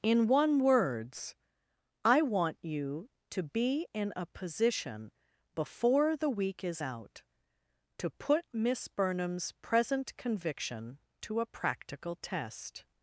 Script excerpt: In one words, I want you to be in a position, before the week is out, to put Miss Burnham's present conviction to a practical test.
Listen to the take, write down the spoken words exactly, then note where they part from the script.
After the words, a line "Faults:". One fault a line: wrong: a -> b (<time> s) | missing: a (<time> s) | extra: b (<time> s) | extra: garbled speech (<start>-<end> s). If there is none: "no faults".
In one words, I want you to be in a position, before the week is out, to put Miss Burnham's present conviction to a practical test.
Faults:
no faults